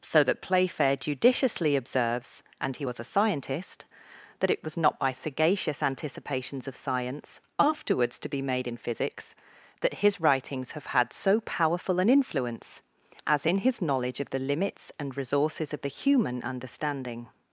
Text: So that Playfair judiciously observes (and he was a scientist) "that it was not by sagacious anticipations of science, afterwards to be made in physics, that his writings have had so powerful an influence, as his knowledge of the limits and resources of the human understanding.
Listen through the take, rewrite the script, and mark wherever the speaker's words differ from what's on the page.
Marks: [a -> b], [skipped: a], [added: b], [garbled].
So that Playfair judiciously observes (and he was a scientist) "that it was not by sagacious anticipations of science, afterwards to be made in physics, that his writings have had so powerful an influence, as [added: in] his knowledge of the limits and resources of the human understanding.